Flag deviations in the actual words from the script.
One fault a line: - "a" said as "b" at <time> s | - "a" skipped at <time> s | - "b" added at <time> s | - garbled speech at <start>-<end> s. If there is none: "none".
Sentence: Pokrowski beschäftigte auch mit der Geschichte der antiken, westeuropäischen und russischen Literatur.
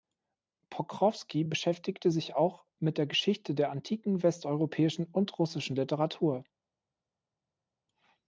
- "sich" added at 2.1 s